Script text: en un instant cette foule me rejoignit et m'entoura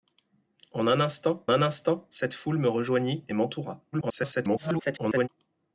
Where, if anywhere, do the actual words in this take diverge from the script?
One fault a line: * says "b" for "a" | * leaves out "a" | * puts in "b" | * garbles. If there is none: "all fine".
* puts in "un instant"
* garbles